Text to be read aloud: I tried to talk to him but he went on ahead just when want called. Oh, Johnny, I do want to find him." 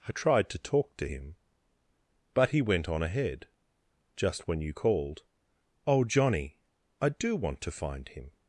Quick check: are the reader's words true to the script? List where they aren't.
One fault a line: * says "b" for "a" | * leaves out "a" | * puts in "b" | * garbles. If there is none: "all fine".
* says "you" for "want"